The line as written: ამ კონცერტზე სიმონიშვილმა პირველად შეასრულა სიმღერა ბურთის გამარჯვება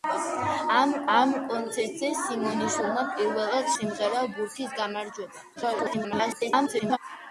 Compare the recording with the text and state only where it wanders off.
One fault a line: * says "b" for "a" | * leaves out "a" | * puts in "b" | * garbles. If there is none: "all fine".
* puts in "ამ"
* leaves out "შეასრულა"
* garbles